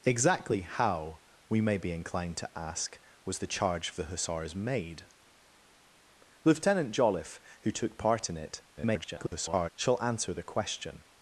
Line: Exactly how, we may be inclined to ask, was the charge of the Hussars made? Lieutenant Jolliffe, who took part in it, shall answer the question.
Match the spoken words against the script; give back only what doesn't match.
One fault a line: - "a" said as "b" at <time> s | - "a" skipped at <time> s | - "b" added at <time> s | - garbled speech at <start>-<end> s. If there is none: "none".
- garbled speech at 8.8-9.7 s